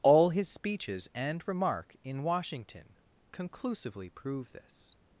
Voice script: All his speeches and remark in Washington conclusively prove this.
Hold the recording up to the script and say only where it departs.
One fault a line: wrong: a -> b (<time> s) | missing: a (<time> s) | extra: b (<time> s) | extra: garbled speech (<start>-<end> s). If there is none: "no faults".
no faults